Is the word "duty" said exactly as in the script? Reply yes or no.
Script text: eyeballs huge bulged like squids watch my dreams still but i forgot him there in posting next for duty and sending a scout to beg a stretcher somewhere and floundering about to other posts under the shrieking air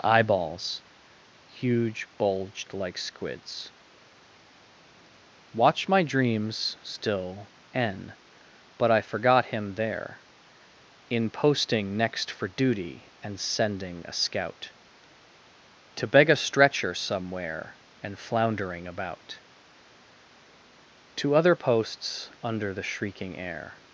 yes